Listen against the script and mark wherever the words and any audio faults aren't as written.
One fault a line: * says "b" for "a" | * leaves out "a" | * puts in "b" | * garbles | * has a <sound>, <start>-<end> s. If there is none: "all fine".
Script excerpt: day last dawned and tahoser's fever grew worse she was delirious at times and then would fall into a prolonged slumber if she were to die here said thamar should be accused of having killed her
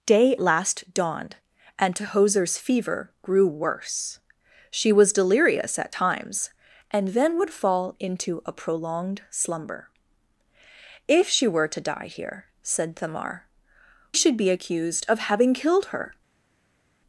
all fine